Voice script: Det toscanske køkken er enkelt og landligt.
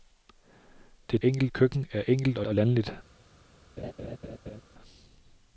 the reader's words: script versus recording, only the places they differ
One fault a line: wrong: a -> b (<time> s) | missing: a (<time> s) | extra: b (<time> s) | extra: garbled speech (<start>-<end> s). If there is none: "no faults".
wrong: toscanske -> enkelt (1.2 s)
extra: og (2.5 s)